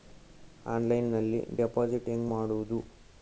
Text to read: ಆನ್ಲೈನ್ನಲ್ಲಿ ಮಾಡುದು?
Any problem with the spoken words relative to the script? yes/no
yes